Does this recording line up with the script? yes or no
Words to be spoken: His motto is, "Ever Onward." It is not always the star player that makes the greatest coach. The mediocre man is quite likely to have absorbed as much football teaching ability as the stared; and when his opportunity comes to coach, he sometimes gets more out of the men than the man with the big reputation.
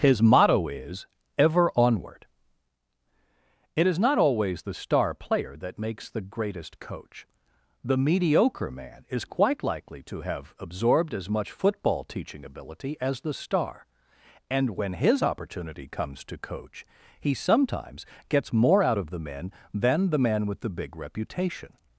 no